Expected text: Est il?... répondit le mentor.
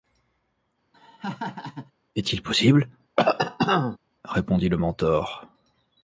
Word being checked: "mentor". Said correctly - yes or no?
yes